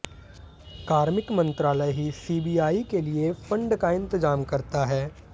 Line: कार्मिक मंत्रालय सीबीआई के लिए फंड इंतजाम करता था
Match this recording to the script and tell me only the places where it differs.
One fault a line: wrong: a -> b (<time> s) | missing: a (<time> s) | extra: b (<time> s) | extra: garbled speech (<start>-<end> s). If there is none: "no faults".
extra: ही (1.9 s)
extra: का (3.8 s)
wrong: था -> है (4.8 s)